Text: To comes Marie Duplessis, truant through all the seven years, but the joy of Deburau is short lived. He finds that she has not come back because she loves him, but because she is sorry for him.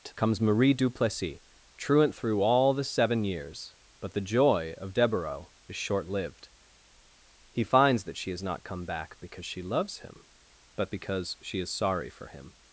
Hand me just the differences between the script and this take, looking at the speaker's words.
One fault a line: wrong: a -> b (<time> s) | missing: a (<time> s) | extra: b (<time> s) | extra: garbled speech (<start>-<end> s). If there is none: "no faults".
no faults